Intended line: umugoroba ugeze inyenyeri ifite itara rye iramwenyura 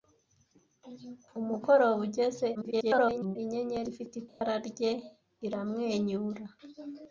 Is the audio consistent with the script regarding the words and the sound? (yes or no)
no